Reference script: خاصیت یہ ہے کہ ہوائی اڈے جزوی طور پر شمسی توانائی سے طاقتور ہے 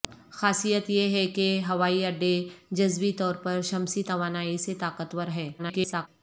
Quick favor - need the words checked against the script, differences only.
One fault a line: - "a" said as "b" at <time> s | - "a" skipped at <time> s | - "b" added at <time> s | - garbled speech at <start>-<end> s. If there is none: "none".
- garbled speech at 5.6-6.1 s